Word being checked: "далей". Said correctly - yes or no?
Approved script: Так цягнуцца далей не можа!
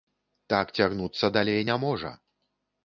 yes